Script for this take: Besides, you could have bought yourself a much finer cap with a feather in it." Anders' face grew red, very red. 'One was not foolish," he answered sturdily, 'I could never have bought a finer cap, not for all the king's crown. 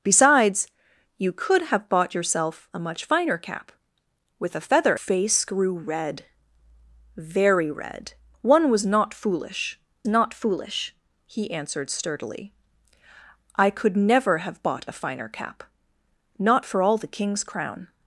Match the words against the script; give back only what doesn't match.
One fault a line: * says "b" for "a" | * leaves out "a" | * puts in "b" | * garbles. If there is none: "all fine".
* leaves out "in it Anders"
* puts in "not foolish"